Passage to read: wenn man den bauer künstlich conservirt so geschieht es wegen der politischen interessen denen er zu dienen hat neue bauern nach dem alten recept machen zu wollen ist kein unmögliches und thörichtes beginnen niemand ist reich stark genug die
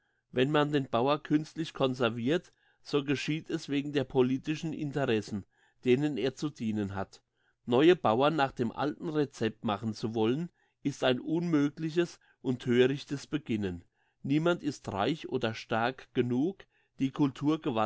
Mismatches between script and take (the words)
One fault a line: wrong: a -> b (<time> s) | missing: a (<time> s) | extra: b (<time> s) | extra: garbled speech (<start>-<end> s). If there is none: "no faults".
wrong: kein -> ein (11.0 s)
extra: oder (15.3 s)